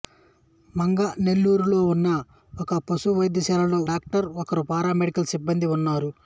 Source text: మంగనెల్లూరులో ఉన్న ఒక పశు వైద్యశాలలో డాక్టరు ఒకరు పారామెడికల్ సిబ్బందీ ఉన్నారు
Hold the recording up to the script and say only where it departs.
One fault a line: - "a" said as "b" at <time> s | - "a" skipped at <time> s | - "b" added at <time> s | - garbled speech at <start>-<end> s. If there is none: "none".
none